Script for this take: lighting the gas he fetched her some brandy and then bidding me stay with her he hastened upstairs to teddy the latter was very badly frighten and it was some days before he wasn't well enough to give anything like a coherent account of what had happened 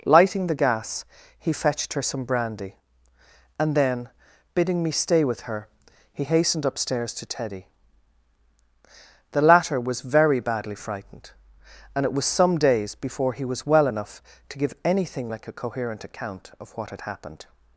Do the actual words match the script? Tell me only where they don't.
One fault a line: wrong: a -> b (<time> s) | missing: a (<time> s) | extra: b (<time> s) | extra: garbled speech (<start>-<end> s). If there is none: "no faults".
wrong: frighten -> frightened (10.8 s)
wrong: wasn't -> was (13.4 s)